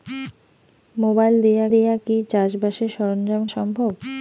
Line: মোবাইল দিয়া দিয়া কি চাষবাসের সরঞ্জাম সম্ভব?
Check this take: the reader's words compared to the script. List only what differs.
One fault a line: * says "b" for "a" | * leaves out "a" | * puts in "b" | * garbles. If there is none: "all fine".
all fine